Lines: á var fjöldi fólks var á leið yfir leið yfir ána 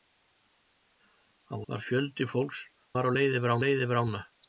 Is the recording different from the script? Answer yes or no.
no